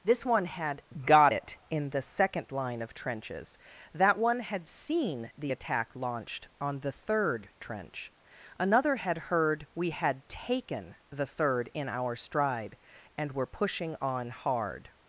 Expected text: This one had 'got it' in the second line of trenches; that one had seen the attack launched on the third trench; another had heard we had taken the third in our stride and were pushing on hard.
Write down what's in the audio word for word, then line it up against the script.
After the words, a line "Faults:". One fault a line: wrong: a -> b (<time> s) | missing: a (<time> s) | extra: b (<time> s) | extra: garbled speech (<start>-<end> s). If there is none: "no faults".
This one had 'got it' in the second line of trenches; that one had seen the attack launched on the third trench; another had heard we had taken the third in our stride and were pushing on hard.
Faults:
no faults